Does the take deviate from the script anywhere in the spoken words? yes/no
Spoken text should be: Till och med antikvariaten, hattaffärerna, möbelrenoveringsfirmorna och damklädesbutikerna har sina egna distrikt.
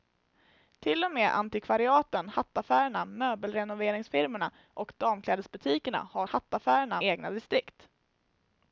yes